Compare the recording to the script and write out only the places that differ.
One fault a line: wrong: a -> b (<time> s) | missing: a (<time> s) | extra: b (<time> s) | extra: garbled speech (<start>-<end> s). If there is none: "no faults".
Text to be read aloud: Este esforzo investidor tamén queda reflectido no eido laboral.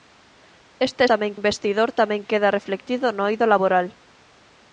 wrong: esforzo -> tamén (1.1 s)